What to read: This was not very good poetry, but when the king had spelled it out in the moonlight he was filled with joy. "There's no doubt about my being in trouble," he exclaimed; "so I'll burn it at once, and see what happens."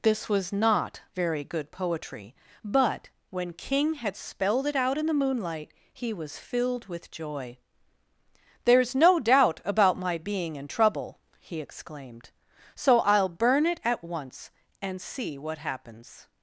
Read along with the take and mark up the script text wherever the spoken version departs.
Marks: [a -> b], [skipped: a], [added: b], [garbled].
This was not very good poetry, but when [skipped: the] king had spelled it out in the moonlight he was filled with joy. "There's no doubt about my being in trouble," he exclaimed; "so I'll burn it at once, and see what happens."